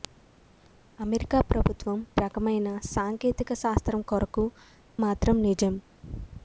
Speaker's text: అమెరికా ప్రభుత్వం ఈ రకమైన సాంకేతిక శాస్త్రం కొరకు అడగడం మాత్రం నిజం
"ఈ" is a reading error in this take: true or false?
true